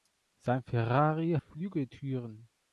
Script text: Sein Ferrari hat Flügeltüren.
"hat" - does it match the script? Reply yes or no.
no